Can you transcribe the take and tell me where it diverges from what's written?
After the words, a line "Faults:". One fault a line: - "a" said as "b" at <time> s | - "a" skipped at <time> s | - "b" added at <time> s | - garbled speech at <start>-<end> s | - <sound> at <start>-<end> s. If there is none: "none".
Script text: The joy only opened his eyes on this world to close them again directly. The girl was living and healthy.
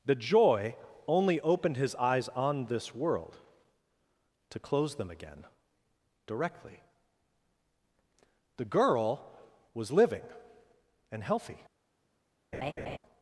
The joy only opened his eyes on this world to close them again directly. The girl was living and healthy.
Faults:
- laugh at 12.5-13.0 s